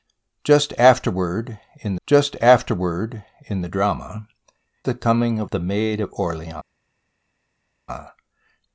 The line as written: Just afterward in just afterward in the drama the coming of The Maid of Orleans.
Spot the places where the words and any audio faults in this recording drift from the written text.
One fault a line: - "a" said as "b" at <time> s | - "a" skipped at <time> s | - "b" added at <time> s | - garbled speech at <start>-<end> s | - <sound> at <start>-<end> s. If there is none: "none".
none